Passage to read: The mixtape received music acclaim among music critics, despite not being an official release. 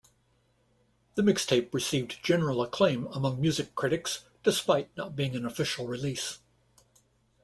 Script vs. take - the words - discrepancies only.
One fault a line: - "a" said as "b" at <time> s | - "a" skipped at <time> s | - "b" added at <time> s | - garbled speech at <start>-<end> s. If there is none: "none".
- "music" said as "general" at 2.2 s